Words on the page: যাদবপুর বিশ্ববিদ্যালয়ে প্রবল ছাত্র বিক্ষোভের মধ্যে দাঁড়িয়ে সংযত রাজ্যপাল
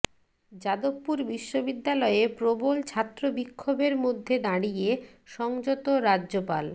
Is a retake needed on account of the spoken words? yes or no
no